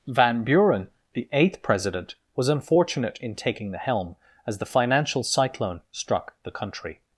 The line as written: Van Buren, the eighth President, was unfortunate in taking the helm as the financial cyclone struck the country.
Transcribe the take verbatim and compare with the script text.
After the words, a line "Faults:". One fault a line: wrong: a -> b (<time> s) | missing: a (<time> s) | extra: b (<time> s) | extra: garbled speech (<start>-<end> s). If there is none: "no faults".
Van Buren, the eighth President, was unfortunate in taking the helm as the financial cyclone struck the country.
Faults:
no faults